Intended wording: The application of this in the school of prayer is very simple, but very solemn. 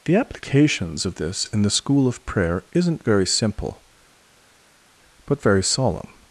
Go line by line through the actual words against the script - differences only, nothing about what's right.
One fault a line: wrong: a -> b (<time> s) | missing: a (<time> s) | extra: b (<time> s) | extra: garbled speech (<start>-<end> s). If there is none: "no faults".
wrong: application -> applications (0.1 s)
wrong: is -> isn't (2.7 s)